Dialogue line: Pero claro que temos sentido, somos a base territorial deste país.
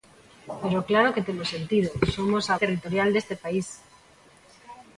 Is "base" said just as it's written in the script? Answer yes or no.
no